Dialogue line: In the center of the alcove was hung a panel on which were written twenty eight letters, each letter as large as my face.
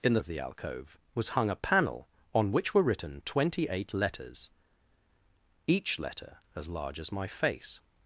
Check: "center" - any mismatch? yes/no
yes